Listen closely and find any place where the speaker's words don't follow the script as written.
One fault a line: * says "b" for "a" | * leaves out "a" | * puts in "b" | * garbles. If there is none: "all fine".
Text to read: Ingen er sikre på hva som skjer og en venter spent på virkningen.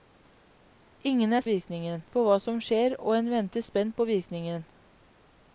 * says "virkningen" for "sikre"